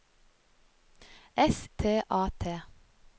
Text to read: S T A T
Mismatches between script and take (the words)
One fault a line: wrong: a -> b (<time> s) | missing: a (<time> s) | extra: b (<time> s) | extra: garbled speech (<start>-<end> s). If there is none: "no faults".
no faults